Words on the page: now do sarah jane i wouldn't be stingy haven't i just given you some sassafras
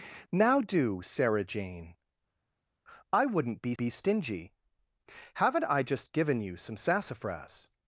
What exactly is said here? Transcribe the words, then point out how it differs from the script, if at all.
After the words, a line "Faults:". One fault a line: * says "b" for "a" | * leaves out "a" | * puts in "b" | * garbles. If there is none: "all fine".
now do sarah jane i wouldn't be be stingy haven't i just given you some sassafras
Faults:
* puts in "be"